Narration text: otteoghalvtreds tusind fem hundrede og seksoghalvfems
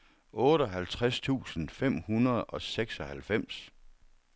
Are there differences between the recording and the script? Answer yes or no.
no